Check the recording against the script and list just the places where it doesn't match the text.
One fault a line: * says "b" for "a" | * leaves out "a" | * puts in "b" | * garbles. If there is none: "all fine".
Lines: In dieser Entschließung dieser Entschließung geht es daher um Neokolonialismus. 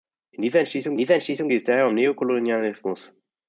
all fine